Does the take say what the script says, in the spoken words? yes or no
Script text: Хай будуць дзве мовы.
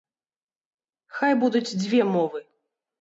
yes